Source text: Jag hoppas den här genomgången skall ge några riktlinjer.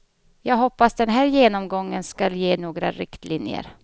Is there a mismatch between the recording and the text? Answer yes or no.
no